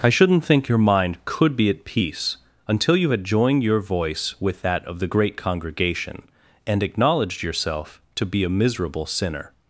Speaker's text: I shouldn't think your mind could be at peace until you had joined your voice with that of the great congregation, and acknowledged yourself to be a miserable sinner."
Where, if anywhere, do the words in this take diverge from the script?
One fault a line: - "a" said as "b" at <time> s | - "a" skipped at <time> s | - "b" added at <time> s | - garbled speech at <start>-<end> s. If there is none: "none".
none